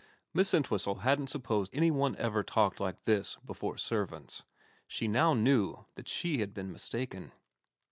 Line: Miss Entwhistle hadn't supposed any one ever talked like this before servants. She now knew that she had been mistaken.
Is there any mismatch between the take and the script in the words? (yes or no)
no